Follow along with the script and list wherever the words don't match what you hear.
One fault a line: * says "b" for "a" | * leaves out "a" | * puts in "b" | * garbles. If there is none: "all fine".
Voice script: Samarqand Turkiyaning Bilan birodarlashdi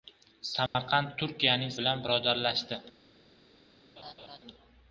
all fine